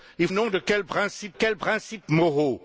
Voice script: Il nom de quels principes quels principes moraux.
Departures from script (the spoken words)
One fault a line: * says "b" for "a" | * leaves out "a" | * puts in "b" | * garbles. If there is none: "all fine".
all fine